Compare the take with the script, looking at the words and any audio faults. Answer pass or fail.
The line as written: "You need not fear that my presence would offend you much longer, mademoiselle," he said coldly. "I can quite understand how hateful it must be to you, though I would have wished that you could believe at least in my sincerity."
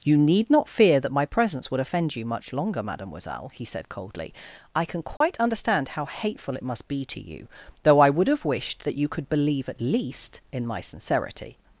fail